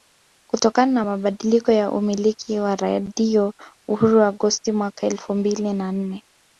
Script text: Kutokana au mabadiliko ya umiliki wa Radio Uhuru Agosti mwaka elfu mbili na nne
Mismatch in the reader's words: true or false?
true